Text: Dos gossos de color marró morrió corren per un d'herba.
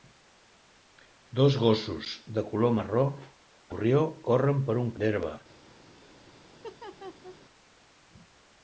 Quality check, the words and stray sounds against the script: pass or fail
fail